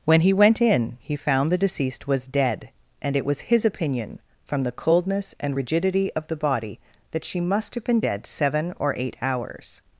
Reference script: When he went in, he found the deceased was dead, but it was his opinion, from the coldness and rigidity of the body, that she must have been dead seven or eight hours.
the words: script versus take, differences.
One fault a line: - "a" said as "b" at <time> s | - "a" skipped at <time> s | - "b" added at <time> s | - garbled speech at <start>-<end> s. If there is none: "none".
- "but" said as "and" at 3.0 s